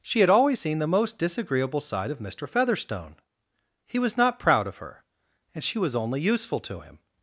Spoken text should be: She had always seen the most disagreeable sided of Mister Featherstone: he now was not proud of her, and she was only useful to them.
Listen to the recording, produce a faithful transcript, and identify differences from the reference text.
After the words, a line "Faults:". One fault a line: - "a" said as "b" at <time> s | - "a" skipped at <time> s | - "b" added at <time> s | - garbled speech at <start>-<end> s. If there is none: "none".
She had always seen the most disagreeable side of Mister Featherstone: he was not proud of her, and she was only useful to him.
Faults:
- "sided" said as "side" at 1.8 s
- "now" skipped at 4.0 s
- "them" said as "him" at 6.8 s